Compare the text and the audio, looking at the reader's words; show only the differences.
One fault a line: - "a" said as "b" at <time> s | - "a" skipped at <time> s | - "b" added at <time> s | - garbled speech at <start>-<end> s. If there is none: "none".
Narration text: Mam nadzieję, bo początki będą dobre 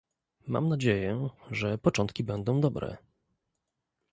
- "bo" said as "że" at 1.5 s